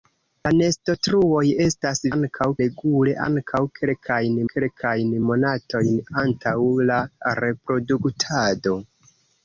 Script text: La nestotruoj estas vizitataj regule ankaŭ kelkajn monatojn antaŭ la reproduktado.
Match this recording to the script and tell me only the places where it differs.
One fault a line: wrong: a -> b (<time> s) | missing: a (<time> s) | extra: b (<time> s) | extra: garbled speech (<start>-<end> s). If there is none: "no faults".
wrong: vizitataj -> ankaŭ (2.1 s)
extra: kelkajn (4.5 s)